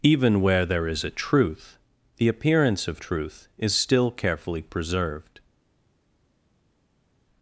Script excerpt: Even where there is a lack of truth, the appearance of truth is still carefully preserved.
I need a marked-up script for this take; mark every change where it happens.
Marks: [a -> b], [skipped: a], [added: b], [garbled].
Even where there is a [skipped: lack of] truth, the appearance of truth is still carefully preserved.